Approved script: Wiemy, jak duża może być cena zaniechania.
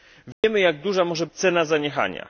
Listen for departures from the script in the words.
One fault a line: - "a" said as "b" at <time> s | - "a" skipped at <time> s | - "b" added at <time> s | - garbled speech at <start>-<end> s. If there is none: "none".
- "być" skipped at 1.2 s